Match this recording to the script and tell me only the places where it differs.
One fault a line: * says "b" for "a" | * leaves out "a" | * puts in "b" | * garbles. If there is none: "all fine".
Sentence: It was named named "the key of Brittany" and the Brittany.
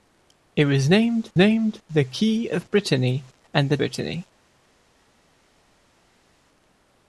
all fine